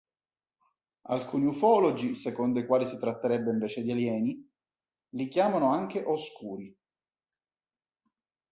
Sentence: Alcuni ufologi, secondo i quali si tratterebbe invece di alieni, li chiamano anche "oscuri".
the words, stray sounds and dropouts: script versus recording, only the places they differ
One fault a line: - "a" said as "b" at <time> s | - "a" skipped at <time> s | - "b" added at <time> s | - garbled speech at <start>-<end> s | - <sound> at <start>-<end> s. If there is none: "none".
none